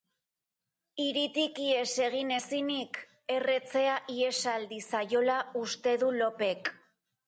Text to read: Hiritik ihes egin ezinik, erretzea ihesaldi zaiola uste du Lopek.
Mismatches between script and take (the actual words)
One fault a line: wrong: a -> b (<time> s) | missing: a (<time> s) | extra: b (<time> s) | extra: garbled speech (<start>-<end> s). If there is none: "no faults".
no faults